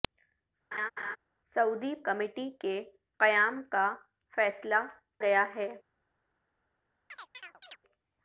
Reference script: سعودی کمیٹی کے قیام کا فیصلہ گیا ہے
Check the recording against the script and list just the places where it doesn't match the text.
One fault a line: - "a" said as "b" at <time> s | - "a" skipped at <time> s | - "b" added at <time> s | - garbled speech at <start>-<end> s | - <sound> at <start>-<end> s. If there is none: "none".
- laugh at 0.7-1.2 s
- chirp at 7.1-7.8 s